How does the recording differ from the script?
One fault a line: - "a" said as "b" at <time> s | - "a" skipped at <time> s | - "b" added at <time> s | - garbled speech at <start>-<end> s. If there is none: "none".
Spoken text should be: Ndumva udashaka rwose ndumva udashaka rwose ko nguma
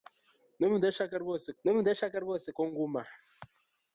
none